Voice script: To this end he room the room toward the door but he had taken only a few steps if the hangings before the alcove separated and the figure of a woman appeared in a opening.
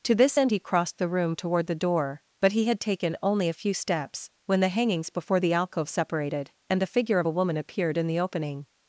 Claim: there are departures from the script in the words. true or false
true